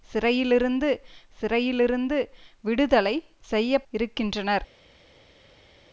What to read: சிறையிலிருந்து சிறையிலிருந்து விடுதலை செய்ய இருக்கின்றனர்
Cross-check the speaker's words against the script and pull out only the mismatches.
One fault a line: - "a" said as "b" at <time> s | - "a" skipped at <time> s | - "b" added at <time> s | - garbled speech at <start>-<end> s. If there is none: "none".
none